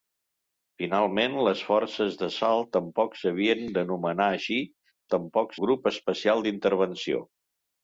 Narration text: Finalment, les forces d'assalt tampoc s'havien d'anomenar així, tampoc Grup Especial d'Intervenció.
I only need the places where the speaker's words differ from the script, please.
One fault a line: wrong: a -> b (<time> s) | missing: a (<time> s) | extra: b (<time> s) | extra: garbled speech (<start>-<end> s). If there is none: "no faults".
no faults